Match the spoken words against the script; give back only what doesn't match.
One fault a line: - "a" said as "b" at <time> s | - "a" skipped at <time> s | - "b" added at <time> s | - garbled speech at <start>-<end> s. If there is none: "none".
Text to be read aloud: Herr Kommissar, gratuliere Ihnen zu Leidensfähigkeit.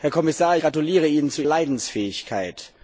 none